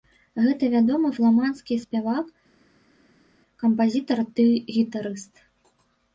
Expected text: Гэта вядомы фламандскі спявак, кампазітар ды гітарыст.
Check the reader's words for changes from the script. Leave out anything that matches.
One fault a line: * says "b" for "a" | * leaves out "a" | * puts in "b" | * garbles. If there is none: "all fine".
all fine